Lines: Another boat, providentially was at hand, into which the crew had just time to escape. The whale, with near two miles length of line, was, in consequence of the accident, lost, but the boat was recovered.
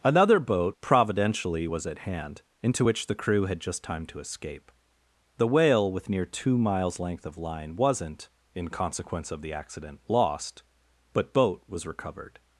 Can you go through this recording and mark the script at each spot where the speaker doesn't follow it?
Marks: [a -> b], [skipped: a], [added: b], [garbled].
Another boat, providentially was at hand, into which the crew had just time to escape. The whale, with near two miles length of line, [was, -> wasn't] in consequence of the accident, lost, but [skipped: the] boat was recovered.